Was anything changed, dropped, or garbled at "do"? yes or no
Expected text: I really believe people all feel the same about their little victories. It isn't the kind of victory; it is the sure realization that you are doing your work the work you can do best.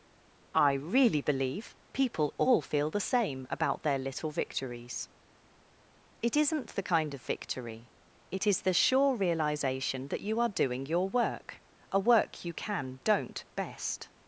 yes